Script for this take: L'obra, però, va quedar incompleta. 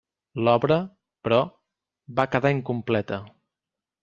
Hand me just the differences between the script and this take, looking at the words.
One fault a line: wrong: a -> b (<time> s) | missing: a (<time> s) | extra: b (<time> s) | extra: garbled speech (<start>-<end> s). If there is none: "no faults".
no faults